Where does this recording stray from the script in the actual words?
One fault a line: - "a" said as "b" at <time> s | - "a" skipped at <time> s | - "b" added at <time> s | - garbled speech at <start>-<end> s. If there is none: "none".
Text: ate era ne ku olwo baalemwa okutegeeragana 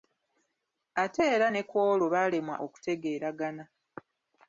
none